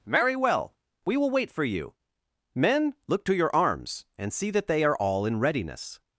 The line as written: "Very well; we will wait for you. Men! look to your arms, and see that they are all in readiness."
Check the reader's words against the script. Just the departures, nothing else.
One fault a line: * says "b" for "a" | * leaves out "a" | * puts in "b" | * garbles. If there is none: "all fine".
all fine